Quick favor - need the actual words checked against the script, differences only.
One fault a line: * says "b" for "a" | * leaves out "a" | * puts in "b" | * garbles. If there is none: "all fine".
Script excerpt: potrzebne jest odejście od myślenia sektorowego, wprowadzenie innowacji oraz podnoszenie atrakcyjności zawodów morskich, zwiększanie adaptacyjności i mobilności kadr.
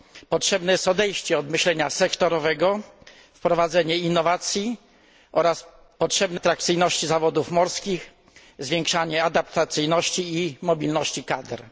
* says "potrzebne" for "podnoszenie"